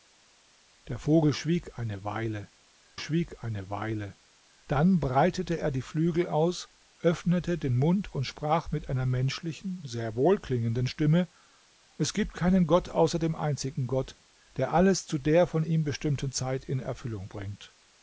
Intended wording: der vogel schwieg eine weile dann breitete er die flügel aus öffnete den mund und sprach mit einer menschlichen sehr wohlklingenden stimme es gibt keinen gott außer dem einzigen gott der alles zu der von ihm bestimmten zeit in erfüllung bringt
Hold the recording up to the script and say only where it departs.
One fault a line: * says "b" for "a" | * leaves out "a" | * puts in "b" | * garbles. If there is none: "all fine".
* puts in "schwieg eine weile"